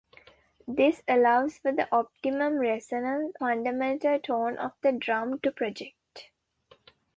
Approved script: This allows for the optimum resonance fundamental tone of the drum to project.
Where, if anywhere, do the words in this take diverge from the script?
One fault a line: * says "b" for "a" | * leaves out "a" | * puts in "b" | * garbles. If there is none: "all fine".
all fine